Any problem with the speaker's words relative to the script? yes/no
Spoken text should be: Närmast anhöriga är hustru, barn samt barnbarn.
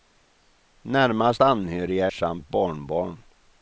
yes